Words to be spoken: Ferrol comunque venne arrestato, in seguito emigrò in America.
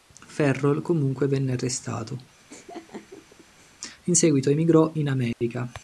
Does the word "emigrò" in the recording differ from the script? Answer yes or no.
no